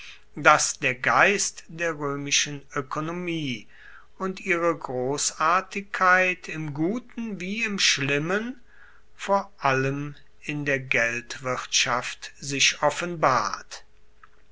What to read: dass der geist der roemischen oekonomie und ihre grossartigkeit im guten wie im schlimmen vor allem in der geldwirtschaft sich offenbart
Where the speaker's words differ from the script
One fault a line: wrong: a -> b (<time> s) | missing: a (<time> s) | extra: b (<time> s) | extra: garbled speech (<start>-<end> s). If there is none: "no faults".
no faults